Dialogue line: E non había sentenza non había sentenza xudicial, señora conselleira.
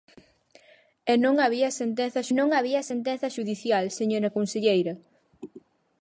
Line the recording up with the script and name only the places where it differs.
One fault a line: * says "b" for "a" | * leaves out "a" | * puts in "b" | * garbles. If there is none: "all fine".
all fine